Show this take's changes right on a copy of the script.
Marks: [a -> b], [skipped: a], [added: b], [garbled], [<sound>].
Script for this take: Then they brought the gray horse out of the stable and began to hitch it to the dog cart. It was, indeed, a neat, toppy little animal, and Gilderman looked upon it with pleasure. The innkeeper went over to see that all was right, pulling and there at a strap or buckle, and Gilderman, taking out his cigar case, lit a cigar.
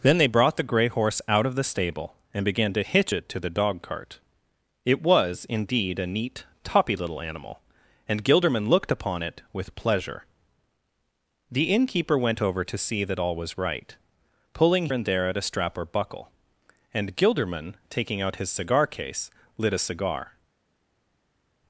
Then they brought the gray horse out of the stable and began to hitch it to the dog cart. It was, indeed, a neat, toppy little animal, and Gilderman looked upon it with pleasure. The innkeeper went over to see that all was right, pulling and there at a strap or buckle, and Gilderman, taking out his cigar case, lit a cigar.